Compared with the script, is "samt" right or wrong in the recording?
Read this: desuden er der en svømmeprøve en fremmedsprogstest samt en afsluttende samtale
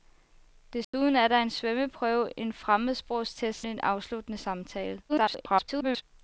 wrong